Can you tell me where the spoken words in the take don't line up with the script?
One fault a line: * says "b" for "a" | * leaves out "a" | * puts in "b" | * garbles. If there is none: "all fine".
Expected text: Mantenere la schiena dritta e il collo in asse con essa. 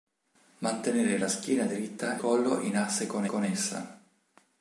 * leaves out "e il"
* puts in "con"